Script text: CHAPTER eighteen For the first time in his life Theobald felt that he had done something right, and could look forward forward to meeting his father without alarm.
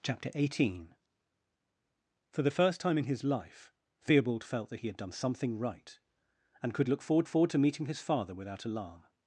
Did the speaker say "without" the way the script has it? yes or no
yes